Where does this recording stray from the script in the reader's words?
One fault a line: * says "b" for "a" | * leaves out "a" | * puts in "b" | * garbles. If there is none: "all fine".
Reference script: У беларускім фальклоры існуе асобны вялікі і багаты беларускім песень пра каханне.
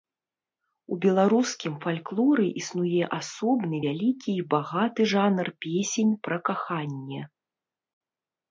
* says "жанр" for "беларускім"